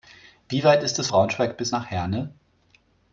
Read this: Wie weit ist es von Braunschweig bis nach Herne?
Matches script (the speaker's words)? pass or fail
fail